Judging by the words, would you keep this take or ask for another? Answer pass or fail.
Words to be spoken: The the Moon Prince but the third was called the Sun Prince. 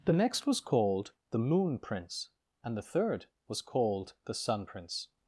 fail